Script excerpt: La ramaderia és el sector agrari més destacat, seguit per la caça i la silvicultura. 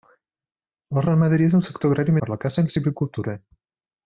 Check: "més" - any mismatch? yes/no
yes